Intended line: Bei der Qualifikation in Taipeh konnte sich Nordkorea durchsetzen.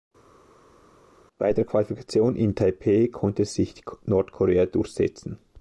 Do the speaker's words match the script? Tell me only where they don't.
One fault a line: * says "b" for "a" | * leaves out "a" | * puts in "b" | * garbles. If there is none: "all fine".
all fine